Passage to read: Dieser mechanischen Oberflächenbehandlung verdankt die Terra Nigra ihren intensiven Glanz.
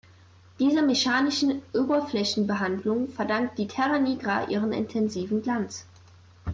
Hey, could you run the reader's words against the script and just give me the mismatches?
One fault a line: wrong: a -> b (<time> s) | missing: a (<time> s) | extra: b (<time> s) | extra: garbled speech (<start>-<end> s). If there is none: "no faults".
no faults